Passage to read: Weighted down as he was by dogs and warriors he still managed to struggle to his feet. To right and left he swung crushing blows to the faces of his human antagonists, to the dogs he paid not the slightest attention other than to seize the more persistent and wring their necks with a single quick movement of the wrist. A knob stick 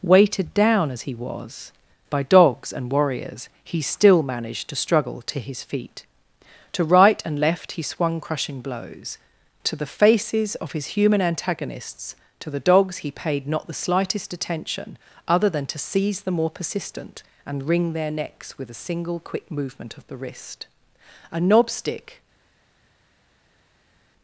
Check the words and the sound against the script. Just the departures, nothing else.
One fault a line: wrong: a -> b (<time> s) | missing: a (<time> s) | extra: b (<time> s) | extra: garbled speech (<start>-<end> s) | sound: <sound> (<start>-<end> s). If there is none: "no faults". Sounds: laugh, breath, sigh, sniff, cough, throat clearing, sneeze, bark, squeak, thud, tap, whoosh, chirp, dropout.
no faults